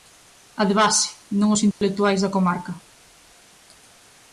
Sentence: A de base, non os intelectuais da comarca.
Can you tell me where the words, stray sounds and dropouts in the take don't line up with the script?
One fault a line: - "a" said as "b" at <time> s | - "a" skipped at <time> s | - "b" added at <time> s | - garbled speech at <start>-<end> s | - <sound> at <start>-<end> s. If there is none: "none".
- dropout at 1.7-1.8 s